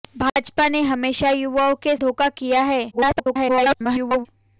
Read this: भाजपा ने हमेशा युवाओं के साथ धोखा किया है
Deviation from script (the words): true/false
true